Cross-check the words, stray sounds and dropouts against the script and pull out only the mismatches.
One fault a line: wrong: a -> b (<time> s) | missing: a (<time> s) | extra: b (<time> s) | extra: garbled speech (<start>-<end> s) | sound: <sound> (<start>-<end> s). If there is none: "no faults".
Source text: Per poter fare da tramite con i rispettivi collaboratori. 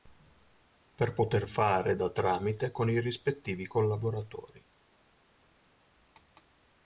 no faults